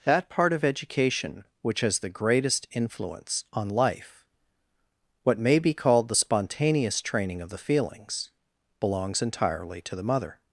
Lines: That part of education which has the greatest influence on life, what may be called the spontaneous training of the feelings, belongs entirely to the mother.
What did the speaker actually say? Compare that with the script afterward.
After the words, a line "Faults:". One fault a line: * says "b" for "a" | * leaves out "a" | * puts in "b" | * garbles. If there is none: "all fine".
That part of education which has the greatest influence on life, what may be called the spontaneous training of the feelings, belongs entirely to the mother.
Faults:
all fine